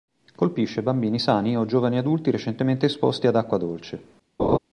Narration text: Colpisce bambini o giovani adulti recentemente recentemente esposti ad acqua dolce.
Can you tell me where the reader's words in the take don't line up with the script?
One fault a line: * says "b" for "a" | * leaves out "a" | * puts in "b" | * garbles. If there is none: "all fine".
* puts in "sani"
* leaves out "recentemente"